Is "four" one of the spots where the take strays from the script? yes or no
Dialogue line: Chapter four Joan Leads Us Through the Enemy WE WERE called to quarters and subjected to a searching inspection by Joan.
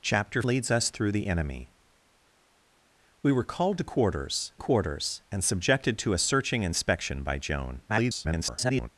yes